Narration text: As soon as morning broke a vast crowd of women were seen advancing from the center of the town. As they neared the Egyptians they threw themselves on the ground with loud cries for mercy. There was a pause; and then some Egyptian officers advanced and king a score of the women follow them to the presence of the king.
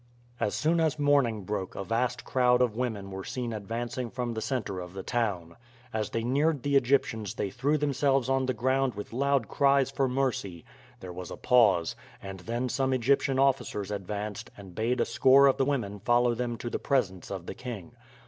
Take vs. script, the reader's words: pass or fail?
fail